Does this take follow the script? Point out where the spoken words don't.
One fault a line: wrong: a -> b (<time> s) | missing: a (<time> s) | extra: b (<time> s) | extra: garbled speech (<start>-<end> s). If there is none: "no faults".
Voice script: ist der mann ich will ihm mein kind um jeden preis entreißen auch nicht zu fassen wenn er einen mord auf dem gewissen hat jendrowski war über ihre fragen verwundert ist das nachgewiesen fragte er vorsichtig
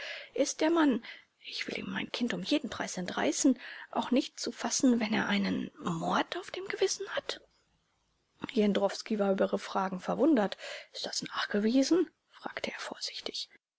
no faults